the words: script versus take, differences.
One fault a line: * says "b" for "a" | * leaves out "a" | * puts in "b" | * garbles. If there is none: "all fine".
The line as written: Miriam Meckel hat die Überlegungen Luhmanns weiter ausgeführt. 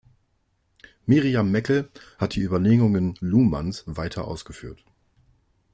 all fine